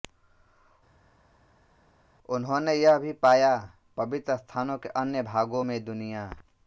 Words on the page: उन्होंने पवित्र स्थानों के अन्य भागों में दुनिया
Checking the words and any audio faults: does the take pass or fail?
fail